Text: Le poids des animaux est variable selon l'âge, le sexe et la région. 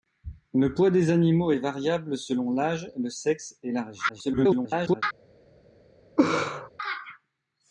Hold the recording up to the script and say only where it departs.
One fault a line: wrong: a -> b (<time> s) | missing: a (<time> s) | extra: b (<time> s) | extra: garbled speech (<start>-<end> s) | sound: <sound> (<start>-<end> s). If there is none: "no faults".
extra: garbled speech (4.1-5.0 s)
sound: laugh (6.2-6.7 s)